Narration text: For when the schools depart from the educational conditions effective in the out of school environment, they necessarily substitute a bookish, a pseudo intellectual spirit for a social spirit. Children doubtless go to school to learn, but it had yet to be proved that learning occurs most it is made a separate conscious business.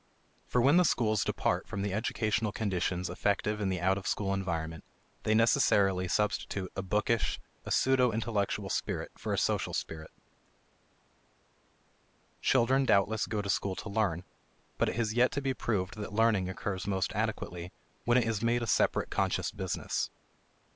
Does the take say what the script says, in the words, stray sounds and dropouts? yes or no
no